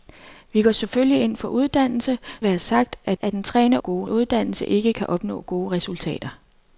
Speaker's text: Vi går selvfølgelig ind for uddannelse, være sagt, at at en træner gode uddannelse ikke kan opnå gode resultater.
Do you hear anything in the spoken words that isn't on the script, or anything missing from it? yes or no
no